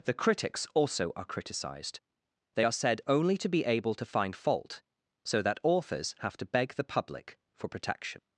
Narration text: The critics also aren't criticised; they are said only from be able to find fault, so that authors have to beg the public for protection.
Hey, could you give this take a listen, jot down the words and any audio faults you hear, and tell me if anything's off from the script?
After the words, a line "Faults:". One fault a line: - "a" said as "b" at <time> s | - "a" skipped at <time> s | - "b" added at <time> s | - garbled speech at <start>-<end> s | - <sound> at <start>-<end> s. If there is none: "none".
The critics also are criticised; they are said only to be able to find fault, so that authors have to beg the public for protection.
Faults:
- "aren't" said as "are" at 1.1 s
- "from" said as "to" at 3.4 s